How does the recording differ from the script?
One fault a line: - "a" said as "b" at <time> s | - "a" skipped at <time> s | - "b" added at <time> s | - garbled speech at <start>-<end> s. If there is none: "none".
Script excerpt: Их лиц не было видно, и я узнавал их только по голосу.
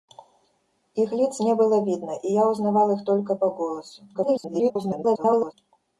- garbled speech at 4.1-5.5 s